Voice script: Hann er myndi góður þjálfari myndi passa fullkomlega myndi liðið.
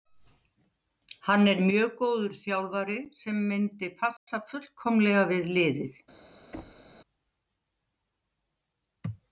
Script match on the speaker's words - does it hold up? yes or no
no